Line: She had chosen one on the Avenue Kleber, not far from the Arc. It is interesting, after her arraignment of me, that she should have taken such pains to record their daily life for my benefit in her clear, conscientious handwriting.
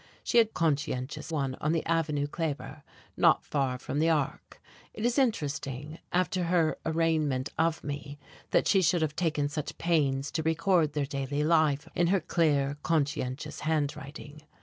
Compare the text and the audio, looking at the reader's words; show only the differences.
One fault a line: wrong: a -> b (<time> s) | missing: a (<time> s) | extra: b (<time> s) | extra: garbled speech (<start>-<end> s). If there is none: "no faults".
wrong: chosen -> conscientious (0.5 s)
missing: for my benefit (11.9 s)